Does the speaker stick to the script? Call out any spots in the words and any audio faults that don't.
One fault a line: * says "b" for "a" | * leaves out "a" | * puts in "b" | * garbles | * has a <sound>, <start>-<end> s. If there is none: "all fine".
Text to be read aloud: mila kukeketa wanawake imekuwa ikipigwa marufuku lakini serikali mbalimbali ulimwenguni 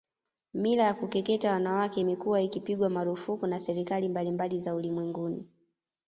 * puts in "ya"
* says "na" for "lakini"
* puts in "za"